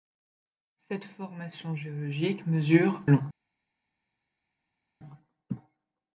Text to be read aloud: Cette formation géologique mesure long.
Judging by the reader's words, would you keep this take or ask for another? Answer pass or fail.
pass